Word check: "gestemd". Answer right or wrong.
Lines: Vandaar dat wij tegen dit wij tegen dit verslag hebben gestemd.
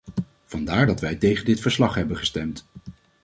right